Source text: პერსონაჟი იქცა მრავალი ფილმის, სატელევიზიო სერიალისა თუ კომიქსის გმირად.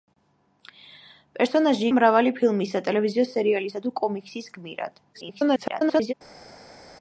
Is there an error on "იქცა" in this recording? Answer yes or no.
yes